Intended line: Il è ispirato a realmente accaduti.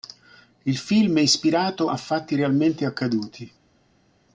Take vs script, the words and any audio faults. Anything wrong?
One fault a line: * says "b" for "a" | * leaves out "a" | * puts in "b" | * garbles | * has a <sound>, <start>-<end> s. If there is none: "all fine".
* puts in "film"
* puts in "fatti"